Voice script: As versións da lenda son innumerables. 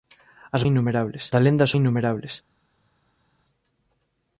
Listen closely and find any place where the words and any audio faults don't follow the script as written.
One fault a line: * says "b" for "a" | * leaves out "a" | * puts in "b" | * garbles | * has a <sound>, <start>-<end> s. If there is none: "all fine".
* says "innumerables" for "versións"
* leaves out "son"